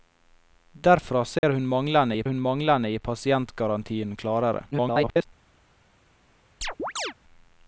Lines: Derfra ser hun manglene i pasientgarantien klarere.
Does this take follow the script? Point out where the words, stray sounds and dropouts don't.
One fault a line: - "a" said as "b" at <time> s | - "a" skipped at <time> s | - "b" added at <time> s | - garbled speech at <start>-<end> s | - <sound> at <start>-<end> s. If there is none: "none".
- dropout at 1.4-1.4 s
- "hun manglene i" added at 2.2 s
- garbled speech at 4.7-5.3 s
- chirp at 6.6-7.1 s